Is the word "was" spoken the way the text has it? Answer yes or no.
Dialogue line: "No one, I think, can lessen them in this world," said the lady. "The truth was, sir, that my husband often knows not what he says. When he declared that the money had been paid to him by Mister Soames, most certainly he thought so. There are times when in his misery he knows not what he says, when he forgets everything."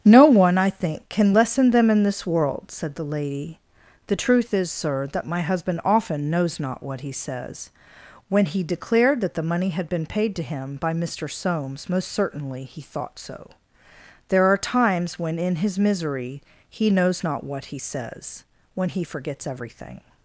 no